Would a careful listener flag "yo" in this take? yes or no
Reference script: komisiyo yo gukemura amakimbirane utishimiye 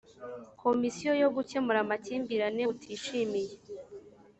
no